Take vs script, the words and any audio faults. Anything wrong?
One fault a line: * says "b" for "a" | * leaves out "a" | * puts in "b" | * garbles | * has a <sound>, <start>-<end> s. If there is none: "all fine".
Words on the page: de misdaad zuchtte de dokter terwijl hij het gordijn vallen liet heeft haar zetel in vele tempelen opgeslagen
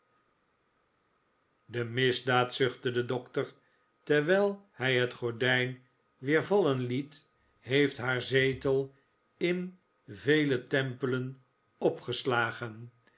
* puts in "weer"